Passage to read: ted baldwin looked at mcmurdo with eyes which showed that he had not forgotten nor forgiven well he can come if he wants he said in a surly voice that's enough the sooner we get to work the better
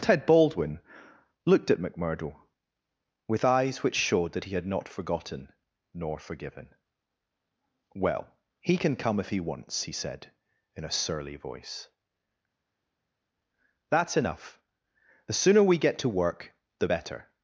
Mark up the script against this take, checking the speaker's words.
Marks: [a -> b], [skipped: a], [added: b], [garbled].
ted baldwin looked at mcmurdo with eyes which showed that he had not forgotten nor forgiven well he can come if he wants he said in a surly voice that's enough the sooner we get to work the better